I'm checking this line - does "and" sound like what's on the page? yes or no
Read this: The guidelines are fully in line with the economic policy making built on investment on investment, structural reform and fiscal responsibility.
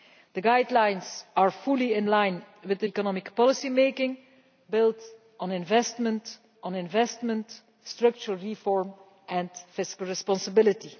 yes